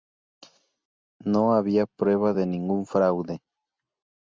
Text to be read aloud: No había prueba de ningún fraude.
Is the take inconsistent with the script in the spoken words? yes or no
no